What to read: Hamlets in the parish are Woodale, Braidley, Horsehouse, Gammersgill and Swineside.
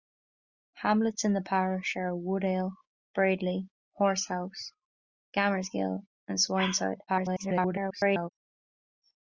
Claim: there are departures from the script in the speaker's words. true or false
true